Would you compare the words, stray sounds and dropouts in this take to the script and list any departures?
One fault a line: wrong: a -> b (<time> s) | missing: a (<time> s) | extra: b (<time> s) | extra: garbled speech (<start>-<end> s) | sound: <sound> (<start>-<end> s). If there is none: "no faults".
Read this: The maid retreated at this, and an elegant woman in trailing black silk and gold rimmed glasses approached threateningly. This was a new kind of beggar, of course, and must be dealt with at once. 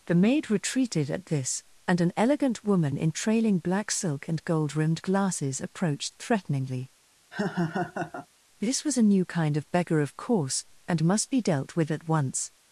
sound: laugh (7.3-8.3 s)